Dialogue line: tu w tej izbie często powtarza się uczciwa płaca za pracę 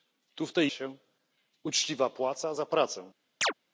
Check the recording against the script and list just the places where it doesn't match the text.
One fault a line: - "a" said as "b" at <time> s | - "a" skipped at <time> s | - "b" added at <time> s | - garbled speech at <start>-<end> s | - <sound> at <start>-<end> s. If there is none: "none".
- "izbie często powtarza" skipped at 0.7 s
- chirp at 3.4-3.5 s